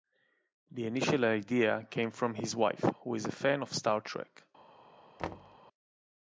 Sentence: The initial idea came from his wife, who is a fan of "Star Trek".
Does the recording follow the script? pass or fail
pass